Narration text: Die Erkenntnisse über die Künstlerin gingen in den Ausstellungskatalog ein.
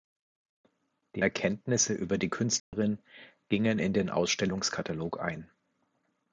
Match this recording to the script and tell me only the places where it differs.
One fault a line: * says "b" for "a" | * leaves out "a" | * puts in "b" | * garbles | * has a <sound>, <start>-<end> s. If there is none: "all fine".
* has a dropout, 2.6-2.7 s